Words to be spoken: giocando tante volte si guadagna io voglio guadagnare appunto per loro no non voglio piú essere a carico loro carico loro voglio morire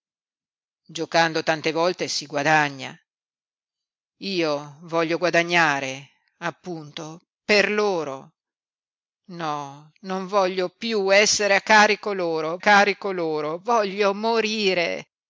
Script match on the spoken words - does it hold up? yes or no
yes